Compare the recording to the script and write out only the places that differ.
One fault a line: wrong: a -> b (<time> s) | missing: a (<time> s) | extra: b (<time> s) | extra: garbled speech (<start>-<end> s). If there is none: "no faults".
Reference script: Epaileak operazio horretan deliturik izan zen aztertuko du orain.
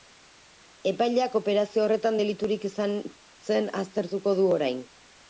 no faults